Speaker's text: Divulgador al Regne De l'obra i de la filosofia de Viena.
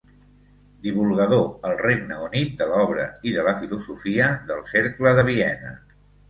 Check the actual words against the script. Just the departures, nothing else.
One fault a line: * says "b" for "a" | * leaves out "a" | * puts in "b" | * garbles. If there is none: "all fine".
* puts in "Unit"
* puts in "del Cercle"